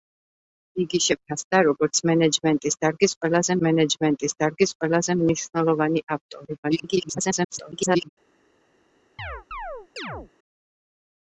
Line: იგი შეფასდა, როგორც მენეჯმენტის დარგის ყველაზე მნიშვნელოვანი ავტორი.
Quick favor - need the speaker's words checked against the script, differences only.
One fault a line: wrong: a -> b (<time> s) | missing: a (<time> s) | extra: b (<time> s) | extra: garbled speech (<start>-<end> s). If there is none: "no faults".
extra: მენეჯმენტის დარგის ყველაზე (3.7 s)
extra: garbled speech (6.6-8.1 s)